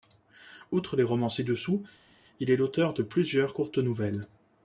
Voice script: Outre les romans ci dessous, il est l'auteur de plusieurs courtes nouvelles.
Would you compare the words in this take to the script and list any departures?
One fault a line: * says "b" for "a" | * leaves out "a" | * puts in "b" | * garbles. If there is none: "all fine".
all fine